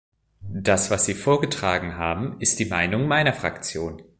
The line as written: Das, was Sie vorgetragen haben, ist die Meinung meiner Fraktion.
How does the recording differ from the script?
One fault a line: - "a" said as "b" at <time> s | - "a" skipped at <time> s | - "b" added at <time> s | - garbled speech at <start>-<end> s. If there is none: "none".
none